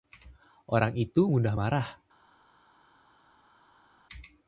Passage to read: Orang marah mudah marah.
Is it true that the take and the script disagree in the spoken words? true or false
true